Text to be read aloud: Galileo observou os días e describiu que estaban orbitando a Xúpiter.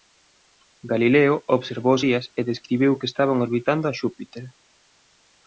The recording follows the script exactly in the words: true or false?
true